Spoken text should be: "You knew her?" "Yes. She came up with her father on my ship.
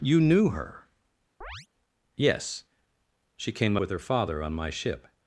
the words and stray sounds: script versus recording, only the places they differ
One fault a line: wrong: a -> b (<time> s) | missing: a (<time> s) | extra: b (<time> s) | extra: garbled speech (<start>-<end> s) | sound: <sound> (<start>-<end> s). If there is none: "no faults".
sound: chirp (1.4-1.7 s)
missing: up (3.8 s)